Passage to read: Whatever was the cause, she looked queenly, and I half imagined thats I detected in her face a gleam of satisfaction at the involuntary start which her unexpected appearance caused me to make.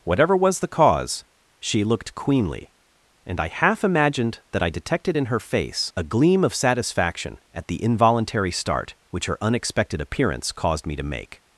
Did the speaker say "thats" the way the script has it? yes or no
no